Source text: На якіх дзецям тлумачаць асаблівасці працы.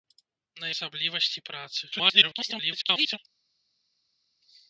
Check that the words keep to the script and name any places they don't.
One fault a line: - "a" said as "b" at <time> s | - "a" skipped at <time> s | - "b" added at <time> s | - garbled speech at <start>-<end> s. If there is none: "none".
- "якіх дзецям тлумачаць" skipped at 0.7 s
- garbled speech at 1.9-3.2 s